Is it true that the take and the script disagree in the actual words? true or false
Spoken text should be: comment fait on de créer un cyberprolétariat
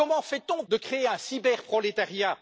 false